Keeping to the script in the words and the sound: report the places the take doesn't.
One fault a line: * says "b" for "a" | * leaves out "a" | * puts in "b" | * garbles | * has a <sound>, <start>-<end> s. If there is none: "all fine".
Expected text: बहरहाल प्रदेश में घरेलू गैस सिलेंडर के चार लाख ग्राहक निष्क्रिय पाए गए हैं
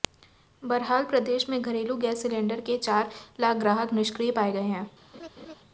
* has a laugh, 5.1-5.5 s